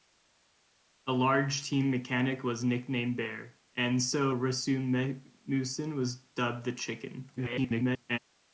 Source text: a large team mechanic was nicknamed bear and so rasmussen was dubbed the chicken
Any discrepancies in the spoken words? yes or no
yes